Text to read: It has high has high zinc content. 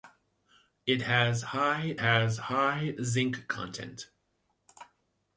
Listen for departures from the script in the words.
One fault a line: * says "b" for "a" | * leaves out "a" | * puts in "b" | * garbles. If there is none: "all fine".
all fine